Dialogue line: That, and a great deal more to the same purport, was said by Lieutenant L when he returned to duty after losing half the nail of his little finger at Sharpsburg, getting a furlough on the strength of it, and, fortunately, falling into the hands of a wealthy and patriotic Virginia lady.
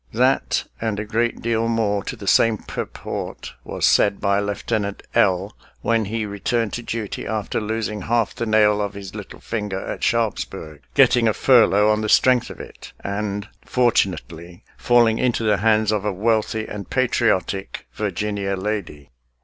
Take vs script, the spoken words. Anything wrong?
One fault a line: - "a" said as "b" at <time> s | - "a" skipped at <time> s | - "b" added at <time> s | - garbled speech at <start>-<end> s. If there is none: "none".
none